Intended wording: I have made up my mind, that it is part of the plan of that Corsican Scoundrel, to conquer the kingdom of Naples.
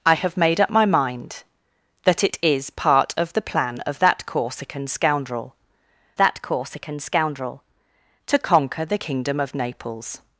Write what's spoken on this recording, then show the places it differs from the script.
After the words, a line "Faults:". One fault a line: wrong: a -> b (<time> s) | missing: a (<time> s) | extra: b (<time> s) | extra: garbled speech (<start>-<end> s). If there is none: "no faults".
I have made up my mind, that it is part of the plan of that Corsican Scoundrel that Corsican Scoundrel, to conquer the kingdom of Naples.
Faults:
extra: that Corsican Scoundrel (6.2 s)